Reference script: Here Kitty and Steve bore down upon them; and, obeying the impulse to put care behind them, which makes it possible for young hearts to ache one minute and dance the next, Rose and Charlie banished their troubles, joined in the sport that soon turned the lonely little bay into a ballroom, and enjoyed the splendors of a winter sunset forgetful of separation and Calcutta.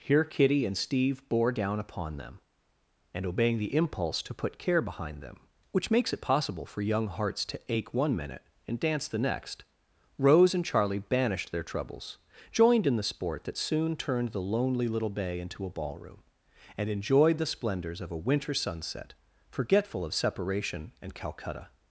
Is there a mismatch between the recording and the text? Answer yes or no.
no